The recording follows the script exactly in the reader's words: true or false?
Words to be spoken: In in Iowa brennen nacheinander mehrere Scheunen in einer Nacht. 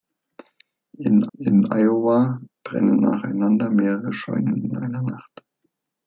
true